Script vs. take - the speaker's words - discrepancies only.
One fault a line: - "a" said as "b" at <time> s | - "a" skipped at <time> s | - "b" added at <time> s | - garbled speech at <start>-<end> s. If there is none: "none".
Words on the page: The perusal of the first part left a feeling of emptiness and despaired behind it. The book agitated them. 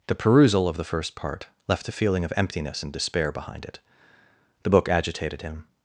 - "despaired" said as "despair" at 2.9 s
- "them" said as "him" at 5.4 s